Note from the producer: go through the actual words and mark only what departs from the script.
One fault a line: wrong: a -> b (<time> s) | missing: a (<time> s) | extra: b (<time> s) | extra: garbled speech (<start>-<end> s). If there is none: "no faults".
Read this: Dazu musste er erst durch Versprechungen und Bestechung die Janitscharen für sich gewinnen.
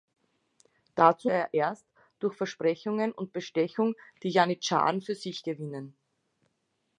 missing: musste (1.3 s)